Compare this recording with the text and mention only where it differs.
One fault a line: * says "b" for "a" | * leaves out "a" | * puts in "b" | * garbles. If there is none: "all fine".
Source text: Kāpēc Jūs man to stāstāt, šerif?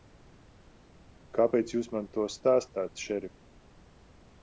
all fine